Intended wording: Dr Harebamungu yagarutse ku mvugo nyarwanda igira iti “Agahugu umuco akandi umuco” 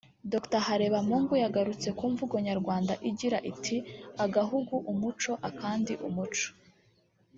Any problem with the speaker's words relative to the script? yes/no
no